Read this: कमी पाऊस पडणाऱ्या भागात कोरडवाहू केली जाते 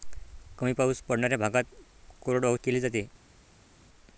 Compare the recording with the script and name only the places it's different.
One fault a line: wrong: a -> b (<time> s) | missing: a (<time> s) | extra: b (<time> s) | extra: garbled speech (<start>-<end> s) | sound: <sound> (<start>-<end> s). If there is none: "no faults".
no faults